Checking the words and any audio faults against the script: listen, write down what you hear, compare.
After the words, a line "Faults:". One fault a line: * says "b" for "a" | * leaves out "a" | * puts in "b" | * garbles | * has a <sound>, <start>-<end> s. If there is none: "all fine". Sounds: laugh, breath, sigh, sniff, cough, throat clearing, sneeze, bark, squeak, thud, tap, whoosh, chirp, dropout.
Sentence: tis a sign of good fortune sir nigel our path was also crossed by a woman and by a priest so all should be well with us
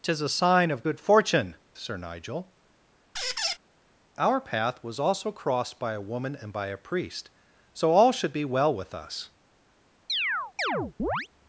tis a sign of good fortune sir nigel our path was also crossed by a woman and by a priest so all should be well with us
Faults:
* has a squeak, 3.1-3.6 s
* has a chirp, 10.1-11.3 s